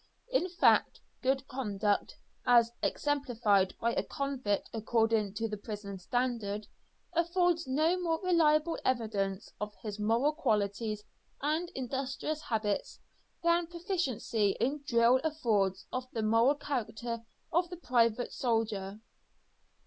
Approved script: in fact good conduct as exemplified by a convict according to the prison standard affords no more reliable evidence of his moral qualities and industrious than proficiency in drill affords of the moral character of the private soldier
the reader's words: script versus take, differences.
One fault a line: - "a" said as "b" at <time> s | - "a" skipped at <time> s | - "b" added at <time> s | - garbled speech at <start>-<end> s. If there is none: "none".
- "habits" added at 12.4 s